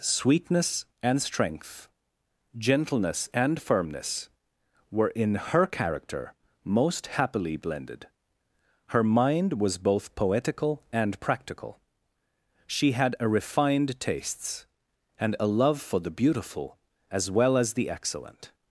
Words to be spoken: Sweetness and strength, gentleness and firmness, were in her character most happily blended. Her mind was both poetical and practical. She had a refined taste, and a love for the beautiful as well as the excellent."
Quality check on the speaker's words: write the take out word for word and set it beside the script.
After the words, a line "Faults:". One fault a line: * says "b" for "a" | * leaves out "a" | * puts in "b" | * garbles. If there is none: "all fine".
Sweetness and strength, gentleness and firmness, were in her character most happily blended. Her mind was both poetical and practical. She had a refined tastes, and a love for the beautiful as well as the excellent."
Faults:
* says "tastes" for "taste"